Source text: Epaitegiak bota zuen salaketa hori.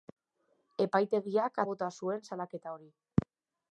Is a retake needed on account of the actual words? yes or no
no